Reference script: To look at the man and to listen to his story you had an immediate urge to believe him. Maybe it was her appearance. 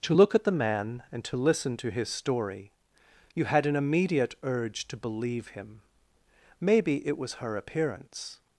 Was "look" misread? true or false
false